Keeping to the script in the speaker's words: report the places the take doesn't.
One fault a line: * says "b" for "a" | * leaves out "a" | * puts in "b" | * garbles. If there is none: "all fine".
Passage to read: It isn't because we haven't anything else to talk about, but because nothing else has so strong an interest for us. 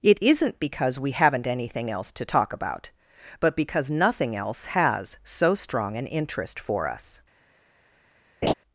all fine